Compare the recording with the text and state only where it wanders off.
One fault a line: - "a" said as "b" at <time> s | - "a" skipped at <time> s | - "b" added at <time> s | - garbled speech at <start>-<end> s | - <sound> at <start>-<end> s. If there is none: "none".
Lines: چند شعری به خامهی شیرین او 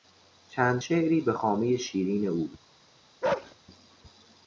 - bark at 3.2-3.6 s